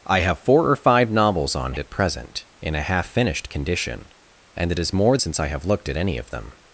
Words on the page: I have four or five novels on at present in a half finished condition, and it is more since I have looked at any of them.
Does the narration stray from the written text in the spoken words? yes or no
no